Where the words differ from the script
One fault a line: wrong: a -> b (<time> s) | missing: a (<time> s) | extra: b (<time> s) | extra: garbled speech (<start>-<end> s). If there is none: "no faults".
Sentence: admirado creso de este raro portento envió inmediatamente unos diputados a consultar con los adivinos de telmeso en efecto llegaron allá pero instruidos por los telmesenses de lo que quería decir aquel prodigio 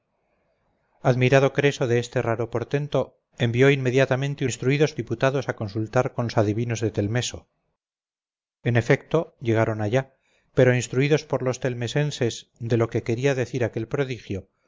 wrong: unos -> instruidos (4.4 s)